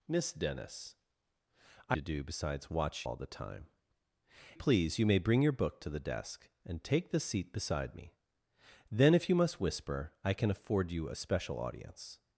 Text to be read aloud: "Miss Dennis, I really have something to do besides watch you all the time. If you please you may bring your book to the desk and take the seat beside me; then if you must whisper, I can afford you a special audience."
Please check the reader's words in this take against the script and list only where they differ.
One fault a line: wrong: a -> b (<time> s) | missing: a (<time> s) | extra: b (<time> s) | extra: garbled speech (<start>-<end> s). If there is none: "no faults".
missing: really have something (2.0 s)
missing: you (3.1 s)
missing: If you (3.7 s)